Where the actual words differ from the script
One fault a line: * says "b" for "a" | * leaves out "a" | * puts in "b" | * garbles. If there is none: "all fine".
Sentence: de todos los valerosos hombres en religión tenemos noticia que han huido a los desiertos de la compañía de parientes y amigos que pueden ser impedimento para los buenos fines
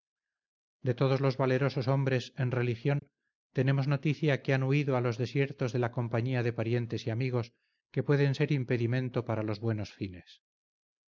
all fine